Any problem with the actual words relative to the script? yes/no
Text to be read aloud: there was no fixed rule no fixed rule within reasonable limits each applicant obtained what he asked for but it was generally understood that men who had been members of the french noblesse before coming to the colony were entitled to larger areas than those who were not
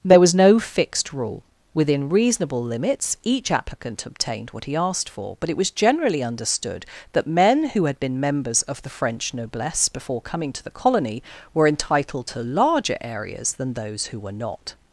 yes